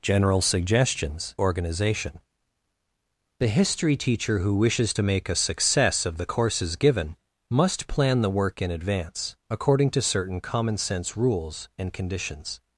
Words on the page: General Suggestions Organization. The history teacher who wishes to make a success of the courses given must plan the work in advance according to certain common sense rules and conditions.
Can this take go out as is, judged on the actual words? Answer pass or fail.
pass